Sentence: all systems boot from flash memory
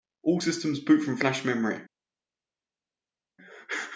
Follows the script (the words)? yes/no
yes